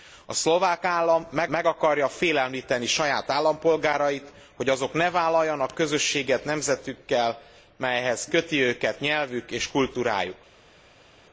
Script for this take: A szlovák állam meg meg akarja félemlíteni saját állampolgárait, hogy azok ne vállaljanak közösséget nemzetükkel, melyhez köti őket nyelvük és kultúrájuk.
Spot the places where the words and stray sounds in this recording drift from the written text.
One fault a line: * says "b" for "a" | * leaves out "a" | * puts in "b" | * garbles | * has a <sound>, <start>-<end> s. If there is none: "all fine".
all fine